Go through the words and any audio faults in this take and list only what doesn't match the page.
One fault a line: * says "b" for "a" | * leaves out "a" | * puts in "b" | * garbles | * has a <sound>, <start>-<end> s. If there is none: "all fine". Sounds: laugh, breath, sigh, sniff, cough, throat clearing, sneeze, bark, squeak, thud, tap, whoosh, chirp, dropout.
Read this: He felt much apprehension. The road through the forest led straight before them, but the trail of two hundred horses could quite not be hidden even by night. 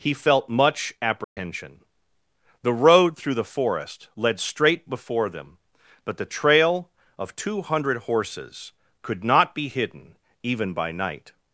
* has a dropout, 1.2-1.4 s
* leaves out "quite"